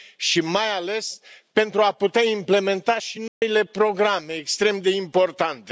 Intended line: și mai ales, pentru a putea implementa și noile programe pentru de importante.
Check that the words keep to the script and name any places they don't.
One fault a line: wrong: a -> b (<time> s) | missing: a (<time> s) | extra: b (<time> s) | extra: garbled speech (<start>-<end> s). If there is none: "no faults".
wrong: pentru -> extrem (4.3 s)